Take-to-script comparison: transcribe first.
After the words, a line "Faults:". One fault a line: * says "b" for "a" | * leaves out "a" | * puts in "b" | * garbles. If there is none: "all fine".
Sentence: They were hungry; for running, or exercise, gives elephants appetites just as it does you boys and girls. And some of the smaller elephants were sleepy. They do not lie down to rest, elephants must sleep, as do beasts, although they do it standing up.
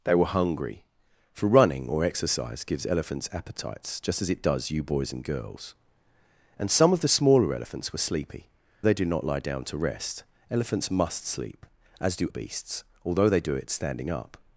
They were hungry; for running, or exercise, gives elephants appetites just as it does you boys and girls. And some of the smaller elephants were sleepy. They do not lie down to rest, elephants must sleep, as do beasts, although they do it standing up.
Faults:
all fine